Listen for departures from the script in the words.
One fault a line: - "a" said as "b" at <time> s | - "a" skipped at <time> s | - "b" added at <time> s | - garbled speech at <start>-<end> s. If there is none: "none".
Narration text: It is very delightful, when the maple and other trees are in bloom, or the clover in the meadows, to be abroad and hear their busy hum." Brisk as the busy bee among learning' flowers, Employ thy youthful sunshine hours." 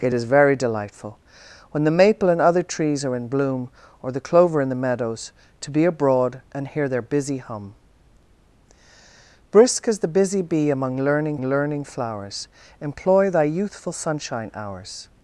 - "learning" added at 11.4 s